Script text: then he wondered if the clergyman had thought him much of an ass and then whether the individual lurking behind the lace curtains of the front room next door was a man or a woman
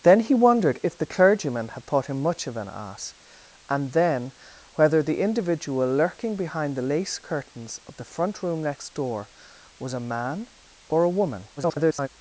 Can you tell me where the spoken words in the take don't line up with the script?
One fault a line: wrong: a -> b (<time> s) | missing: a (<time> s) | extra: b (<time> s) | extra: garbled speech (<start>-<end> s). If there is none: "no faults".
extra: garbled speech (11.6-12.1 s)